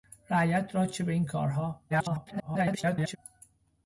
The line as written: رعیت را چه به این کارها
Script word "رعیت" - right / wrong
right